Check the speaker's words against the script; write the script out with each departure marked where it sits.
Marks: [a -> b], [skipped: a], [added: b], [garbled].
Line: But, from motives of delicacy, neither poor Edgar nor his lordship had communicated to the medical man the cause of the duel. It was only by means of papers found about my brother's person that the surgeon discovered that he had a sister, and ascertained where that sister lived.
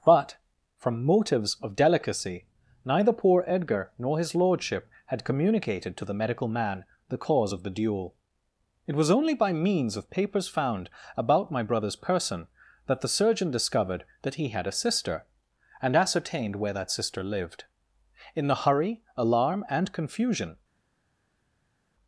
But, from motives of delicacy, neither poor Edgar nor his lordship had communicated to the medical man the cause of the duel. It was only by means of papers found about my brother's person that the surgeon discovered that he had a sister, and ascertained where that sister lived. [added: In the hurry alarm and confusion]